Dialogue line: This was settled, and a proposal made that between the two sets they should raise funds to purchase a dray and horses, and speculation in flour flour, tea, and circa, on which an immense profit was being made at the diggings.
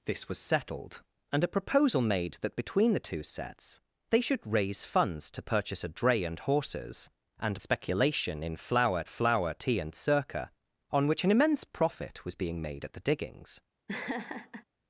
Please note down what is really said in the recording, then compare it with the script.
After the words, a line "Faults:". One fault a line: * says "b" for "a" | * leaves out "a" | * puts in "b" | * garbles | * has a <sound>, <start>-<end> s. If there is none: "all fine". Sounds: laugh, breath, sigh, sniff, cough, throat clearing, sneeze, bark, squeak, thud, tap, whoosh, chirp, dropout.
This was settled, and a proposal made that between the two sets they should raise funds to purchase a dray and horses, and speculation in flour flour, tea, and circa, on which an immense profit was being made at the diggings.
Faults:
* has a laugh, 13.9-14.6 s